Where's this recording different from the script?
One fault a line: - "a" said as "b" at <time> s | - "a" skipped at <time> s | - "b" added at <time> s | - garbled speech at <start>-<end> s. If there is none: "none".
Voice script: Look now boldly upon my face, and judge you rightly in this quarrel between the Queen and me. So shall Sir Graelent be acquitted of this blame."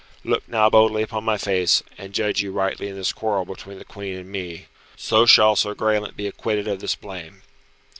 none